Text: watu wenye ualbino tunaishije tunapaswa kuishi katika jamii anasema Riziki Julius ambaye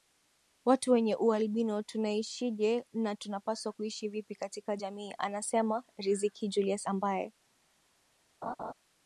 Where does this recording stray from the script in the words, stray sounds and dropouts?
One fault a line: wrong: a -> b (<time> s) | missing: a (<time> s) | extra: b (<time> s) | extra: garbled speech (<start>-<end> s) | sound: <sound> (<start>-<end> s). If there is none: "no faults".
extra: na (2.9 s)
extra: vipi (4.1 s)
sound: laugh (8.4-8.7 s)